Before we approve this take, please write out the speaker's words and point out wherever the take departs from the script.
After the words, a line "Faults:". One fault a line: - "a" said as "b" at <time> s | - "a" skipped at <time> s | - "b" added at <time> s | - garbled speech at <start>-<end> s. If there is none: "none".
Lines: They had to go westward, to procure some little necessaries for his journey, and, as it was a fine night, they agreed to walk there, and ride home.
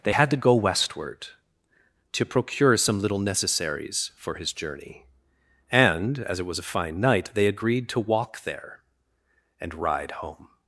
They had to go westward, to procure some little necessaries for his journey, and, as it was a fine night, they agreed to walk there, and ride home.
Faults:
none